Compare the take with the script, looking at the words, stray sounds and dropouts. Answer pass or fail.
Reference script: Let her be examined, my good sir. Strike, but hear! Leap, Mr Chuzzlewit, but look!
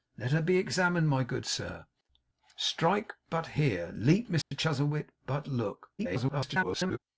fail